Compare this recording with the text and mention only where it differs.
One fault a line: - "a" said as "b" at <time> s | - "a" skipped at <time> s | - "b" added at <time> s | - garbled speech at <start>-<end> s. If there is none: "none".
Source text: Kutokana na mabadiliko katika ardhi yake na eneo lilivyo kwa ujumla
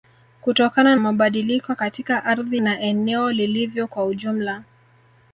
- "na" skipped at 0.9 s
- "yake" skipped at 2.6 s